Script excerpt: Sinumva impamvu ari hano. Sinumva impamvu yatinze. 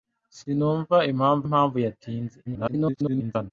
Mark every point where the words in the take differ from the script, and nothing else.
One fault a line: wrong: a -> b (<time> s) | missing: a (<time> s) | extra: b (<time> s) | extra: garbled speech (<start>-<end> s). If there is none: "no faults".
missing: ari hano Sinumva (1.4 s)
extra: garbled speech (2.4-3.5 s)